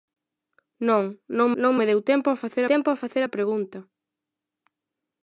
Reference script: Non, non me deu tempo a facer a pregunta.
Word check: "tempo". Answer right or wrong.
right